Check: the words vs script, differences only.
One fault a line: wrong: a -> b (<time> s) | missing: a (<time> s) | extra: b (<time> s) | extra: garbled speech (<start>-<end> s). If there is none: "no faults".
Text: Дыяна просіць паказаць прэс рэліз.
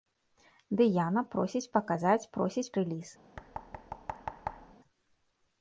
wrong: прэс -> просіць (2.4 s)